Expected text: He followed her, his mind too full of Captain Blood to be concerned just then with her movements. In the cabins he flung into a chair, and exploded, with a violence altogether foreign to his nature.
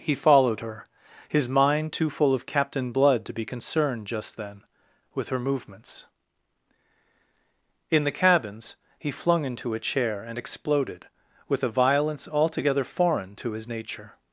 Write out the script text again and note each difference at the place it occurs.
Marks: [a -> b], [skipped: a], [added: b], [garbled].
He followed her, his mind too full of Captain Blood to be concerned just then with her movements. In the cabins he flung into a chair, and exploded, with a violence altogether foreign to his nature.